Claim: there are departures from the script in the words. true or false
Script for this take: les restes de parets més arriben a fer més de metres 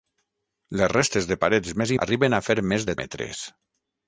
false